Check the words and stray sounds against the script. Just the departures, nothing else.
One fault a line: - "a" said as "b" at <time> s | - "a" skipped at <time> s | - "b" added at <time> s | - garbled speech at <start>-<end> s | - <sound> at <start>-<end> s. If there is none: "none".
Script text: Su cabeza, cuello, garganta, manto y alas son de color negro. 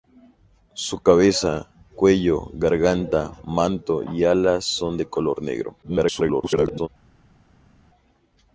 - garbled speech at 5.8-6.9 s